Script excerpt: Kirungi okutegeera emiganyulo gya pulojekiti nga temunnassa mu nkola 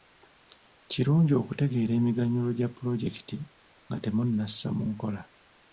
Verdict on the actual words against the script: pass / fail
pass